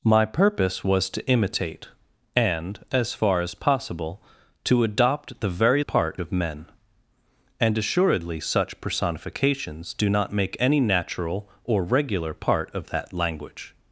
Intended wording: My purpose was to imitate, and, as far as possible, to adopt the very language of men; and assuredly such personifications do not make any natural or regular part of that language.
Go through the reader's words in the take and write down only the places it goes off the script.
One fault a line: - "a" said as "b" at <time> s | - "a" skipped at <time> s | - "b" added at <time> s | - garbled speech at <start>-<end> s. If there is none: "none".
- "language" said as "part" at 5.8 s